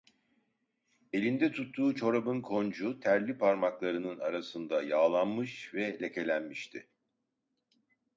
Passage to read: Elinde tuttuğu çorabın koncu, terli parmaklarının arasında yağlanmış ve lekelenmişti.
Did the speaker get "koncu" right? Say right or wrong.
right